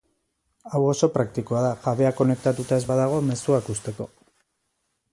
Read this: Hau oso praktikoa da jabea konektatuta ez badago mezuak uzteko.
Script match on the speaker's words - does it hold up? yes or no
yes